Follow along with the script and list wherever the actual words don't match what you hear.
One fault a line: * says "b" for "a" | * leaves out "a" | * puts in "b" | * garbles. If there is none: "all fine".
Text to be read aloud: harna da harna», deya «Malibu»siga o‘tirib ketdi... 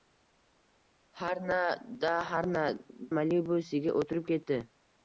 * leaves out "deya"